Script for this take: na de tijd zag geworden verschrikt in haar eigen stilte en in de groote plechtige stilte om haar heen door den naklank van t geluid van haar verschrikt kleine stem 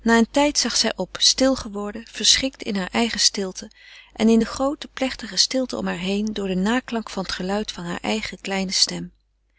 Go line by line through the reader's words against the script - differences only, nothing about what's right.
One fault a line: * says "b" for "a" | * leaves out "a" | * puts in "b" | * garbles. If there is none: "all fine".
* says "een" for "de"
* puts in "zij op stil"
* says "eigen" for "verschrikt"